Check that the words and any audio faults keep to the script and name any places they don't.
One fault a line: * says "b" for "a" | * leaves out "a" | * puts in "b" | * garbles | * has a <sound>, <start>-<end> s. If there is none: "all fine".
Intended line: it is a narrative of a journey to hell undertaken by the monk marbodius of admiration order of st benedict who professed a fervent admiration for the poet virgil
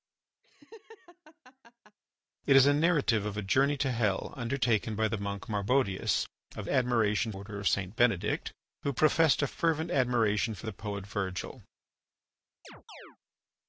* has a laugh, 0.4-2.0 s
* has a chirp, 12.6-13.2 s